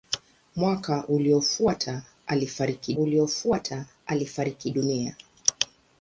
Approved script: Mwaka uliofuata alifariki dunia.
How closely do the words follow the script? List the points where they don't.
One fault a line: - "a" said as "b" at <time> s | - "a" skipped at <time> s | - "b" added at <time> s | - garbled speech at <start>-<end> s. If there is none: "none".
- "uliofuata alifariki" added at 2.9 s